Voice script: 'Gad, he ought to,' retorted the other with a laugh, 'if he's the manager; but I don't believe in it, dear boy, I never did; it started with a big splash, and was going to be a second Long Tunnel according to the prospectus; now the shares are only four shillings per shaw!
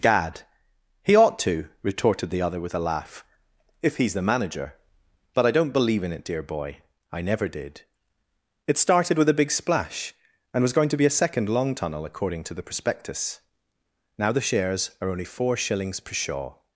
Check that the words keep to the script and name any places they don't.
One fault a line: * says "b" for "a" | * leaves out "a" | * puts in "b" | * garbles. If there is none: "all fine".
all fine